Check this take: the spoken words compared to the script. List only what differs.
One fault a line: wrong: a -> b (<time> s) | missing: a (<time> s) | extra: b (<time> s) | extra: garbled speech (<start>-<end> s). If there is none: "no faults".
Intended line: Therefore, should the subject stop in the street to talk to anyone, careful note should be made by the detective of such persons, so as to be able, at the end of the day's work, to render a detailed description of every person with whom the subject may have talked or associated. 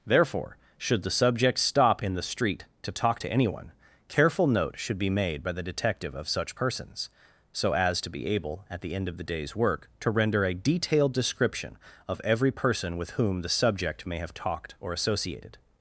no faults